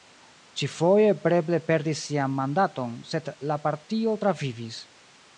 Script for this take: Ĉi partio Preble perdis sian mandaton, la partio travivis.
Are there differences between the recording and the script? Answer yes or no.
yes